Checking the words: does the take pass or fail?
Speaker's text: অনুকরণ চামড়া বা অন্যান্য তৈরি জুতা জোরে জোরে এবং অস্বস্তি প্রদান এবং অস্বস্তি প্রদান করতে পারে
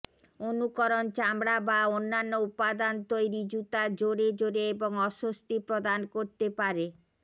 fail